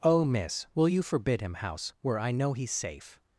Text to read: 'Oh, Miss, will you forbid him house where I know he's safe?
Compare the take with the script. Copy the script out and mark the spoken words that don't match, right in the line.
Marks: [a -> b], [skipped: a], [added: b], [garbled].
'Oh, Miss, will you forbid him house where I know he's safe?